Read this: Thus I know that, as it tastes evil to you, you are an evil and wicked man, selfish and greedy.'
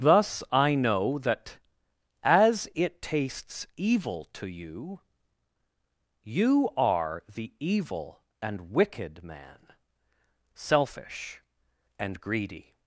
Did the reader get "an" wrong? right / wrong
wrong